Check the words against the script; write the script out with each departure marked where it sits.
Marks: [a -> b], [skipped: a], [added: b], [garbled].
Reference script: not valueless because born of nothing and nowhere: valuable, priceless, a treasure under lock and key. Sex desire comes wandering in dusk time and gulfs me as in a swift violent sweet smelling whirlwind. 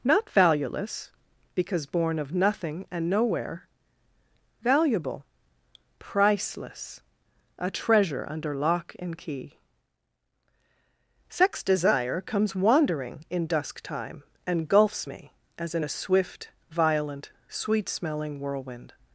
not valueless because born of nothing and nowhere: valuable, priceless, a treasure under lock and key. Sex desire comes wandering in dusk time and gulfs me as in a swift violent sweet smelling whirlwind.